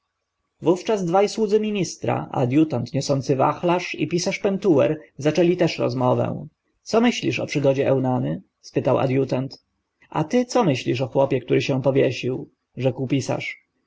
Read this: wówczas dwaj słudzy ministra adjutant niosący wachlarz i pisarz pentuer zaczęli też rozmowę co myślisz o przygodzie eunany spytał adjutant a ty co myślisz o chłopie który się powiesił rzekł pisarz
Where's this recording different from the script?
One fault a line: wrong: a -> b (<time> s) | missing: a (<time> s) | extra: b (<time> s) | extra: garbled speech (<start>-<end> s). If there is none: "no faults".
no faults